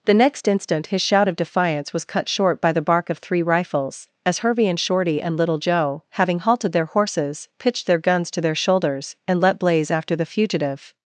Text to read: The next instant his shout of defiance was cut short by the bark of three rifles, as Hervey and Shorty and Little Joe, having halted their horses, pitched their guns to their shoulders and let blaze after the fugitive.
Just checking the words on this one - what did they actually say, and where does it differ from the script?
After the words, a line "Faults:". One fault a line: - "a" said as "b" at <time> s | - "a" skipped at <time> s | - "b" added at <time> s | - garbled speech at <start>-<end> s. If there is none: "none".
The next instant his shout of defiance was cut short by the bark of three rifles, as Hervey and Shorty and Little Joe, having halted their horses, pitched their guns to their shoulders and let blaze after the fugitive.
Faults:
none